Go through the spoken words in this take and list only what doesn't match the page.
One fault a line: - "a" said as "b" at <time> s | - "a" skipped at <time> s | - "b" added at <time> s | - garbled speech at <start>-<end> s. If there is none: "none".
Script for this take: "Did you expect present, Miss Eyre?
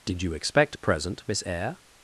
none